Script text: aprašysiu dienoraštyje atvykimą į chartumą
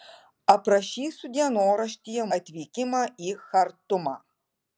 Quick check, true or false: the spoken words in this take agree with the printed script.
true